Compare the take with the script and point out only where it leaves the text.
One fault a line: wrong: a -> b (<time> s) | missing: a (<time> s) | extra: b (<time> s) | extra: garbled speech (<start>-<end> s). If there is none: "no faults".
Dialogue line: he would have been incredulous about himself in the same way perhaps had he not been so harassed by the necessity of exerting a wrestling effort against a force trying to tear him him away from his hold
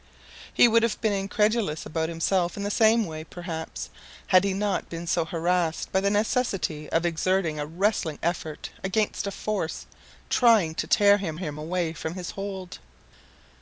no faults